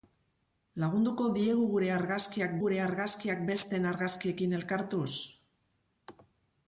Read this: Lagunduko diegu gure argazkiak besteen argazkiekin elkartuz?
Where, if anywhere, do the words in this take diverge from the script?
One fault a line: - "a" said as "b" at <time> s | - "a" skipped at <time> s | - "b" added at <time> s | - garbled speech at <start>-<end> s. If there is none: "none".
- "gure argazkiak" added at 2.6 s